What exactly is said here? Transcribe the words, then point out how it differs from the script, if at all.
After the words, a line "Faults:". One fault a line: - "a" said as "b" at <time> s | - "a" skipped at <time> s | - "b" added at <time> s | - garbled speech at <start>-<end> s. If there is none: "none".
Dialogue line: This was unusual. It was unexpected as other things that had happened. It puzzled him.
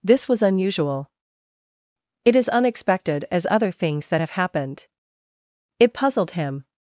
This was unusual. It is unexpected as other things that have happened. It puzzled him.
Faults:
- "was" said as "is" at 2.4 s
- "had" said as "have" at 4.2 s